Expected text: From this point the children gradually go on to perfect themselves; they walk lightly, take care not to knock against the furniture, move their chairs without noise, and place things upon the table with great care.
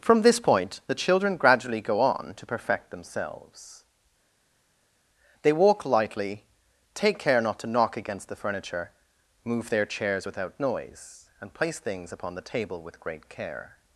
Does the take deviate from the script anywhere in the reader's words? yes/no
no